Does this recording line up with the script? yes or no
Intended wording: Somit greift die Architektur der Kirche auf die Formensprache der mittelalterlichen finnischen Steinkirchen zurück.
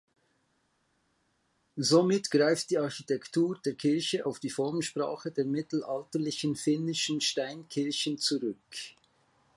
yes